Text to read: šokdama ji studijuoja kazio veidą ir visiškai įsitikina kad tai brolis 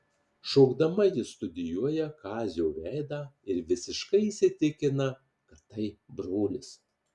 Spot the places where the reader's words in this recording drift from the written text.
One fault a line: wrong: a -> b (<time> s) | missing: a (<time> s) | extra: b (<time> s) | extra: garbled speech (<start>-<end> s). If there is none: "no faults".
no faults